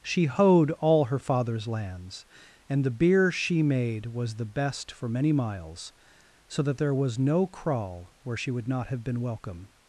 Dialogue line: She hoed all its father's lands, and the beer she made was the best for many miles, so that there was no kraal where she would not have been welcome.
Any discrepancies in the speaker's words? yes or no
yes